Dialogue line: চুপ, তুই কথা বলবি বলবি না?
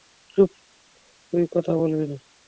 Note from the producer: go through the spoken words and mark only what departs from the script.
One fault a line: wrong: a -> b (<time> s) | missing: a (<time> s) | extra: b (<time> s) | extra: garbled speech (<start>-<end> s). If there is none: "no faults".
missing: বলবি (2.0 s)